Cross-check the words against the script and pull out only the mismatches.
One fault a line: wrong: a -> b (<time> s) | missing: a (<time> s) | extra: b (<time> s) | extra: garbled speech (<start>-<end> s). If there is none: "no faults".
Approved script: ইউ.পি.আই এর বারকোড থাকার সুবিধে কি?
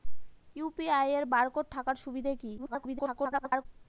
extra: garbled speech (2.6-3.7 s)